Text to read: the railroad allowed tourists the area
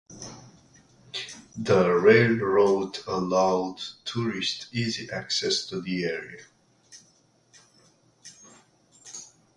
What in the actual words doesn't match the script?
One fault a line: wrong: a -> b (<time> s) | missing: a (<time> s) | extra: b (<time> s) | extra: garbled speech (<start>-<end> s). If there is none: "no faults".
extra: easy access to (4.7 s)